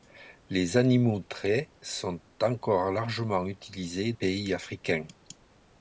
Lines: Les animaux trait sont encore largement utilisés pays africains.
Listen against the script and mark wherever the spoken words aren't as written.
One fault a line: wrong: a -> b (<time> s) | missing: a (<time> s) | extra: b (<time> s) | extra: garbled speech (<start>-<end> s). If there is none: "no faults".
no faults